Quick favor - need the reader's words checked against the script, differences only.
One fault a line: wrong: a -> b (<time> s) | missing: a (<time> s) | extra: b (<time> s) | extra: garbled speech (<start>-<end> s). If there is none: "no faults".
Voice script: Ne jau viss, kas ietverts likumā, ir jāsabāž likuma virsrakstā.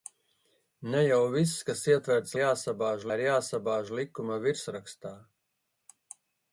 wrong: likumā -> jāsabāž (2.4 s)